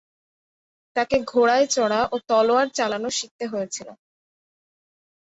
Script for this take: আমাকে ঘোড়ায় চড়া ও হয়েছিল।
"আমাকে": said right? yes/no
no